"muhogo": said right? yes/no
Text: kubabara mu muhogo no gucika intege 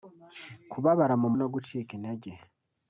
no